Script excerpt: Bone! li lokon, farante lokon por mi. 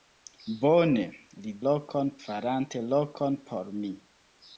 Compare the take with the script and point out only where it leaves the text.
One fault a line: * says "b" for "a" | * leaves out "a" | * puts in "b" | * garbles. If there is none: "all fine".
all fine